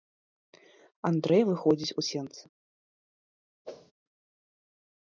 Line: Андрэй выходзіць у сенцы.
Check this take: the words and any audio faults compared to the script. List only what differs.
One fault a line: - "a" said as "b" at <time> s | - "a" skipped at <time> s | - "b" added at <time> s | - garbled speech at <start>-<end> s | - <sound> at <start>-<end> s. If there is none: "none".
- whoosh at 3.6-3.9 s